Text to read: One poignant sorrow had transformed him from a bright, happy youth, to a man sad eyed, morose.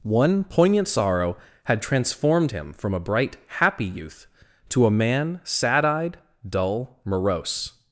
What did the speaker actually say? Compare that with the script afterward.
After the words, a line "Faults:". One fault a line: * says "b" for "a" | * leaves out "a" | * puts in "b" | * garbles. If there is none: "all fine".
One poignant sorrow had transformed him from a bright, happy youth, to a man sad eyed, dull, morose.
Faults:
* puts in "dull"